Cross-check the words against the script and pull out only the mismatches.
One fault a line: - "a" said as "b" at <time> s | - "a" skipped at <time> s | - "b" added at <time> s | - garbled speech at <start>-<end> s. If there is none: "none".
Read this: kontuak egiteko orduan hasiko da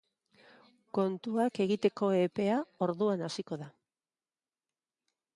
- "epea" added at 2.2 s